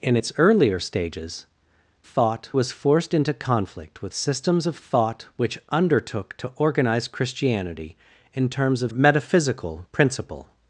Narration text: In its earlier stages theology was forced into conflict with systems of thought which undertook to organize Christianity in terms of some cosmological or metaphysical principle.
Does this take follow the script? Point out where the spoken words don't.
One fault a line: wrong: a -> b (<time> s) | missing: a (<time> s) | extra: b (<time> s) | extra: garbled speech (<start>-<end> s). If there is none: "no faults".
wrong: theology -> thought (2.0 s)
missing: some cosmological or (8.9 s)